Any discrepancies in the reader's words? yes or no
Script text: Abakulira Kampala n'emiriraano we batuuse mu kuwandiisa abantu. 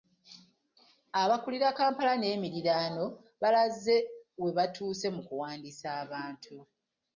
yes